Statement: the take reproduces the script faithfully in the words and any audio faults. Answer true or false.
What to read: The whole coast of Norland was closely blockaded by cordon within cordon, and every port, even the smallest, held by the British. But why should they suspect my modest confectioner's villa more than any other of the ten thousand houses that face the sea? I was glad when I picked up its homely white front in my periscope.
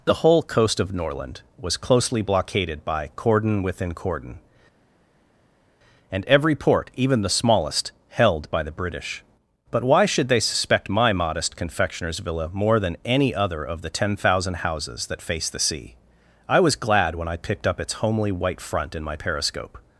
true